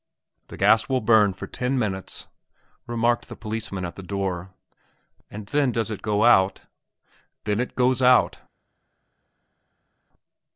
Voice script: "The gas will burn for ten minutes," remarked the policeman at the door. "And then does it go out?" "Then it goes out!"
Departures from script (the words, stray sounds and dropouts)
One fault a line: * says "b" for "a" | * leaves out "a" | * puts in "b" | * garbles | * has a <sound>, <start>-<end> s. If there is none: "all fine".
all fine